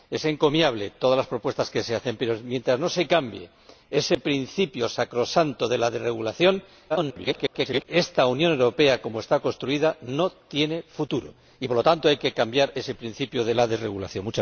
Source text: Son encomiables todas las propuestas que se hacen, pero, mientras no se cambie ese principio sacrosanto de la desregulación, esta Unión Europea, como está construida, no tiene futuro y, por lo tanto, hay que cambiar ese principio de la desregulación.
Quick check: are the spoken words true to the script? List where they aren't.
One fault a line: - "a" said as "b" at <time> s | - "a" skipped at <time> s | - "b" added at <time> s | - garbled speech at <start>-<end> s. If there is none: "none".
- garbled speech at 6.9-7.8 s